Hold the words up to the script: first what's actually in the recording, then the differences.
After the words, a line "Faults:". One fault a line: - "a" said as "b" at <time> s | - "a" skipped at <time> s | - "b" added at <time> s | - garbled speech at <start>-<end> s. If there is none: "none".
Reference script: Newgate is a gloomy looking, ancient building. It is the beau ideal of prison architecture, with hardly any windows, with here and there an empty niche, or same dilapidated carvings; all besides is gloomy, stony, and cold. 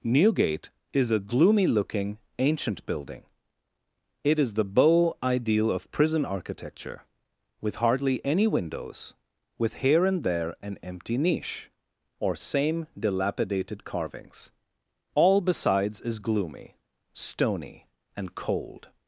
Newgate is a gloomy looking, ancient building. It is the beau ideal of prison architecture, with hardly any windows, with here and there an empty niche, or same dilapidated carvings; all besides is gloomy, stony, and cold.
Faults:
none